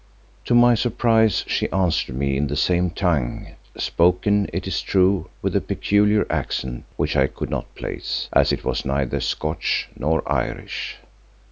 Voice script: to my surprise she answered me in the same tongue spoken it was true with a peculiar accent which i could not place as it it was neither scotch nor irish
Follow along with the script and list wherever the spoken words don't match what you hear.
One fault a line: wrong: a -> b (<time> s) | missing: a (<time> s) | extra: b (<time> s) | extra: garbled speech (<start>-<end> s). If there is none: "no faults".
wrong: was -> is (4.7 s)
missing: it (8.6 s)